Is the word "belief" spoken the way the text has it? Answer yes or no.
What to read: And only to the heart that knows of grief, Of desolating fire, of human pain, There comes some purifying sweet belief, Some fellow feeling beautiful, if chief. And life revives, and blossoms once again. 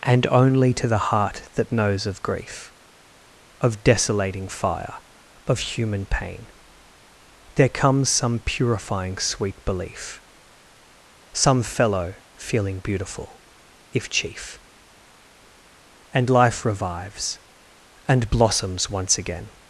yes